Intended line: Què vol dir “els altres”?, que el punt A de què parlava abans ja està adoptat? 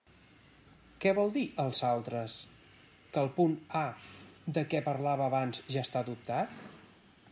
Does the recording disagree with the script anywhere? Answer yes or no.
no